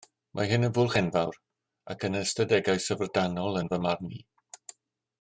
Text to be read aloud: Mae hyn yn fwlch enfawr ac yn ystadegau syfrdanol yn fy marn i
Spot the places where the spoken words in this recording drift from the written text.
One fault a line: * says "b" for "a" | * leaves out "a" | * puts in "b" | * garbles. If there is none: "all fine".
all fine